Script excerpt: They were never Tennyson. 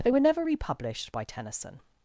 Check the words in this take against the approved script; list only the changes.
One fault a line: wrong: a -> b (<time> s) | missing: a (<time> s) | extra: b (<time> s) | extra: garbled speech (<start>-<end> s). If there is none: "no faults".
extra: republished by (0.4 s)